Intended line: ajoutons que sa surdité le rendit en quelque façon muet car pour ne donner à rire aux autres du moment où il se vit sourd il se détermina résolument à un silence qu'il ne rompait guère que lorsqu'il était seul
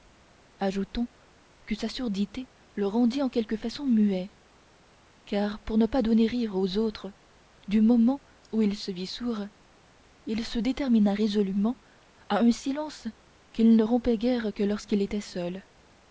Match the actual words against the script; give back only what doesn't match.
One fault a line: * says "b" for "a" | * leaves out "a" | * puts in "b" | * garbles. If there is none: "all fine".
* puts in "pas"